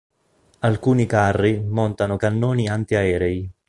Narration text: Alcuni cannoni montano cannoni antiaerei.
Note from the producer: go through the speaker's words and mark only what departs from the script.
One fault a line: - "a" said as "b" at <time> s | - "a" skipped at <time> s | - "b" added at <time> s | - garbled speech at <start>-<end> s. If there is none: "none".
- "cannoni" said as "carri" at 1.1 s